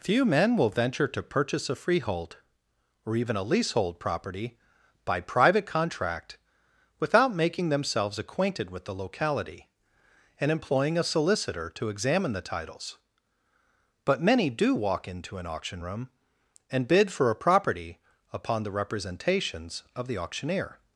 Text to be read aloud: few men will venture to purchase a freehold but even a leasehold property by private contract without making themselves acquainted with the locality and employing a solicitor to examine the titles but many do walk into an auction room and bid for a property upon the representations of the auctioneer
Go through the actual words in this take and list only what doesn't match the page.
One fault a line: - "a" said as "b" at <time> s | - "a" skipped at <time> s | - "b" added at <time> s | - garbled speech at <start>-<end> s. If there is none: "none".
- "but" said as "or" at 3.0 s